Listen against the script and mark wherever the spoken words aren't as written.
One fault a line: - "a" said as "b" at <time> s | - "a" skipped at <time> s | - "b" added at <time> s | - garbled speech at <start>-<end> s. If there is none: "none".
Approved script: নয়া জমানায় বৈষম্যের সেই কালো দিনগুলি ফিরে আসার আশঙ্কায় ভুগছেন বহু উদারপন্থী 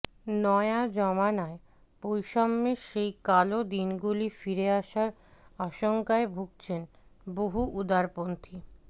none